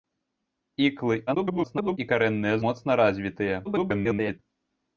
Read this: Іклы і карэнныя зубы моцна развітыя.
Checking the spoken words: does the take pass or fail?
fail